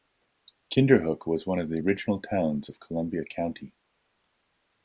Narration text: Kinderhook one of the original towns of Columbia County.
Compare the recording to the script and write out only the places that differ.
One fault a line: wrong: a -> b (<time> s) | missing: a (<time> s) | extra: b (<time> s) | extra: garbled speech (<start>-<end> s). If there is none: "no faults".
extra: was (1.3 s)